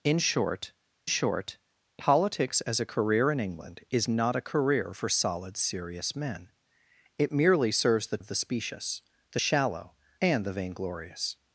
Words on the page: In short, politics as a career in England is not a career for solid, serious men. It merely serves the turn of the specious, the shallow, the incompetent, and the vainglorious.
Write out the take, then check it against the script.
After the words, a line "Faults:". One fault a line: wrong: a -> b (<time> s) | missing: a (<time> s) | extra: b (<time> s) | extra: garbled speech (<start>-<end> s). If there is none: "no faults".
In short short, politics as a career in England is not a career for solid, serious men. It merely serves the of the specious, the shallow, and the vainglorious.
Faults:
extra: short (1.0 s)
missing: turn (8.2 s)
missing: the incompetent (9.9 s)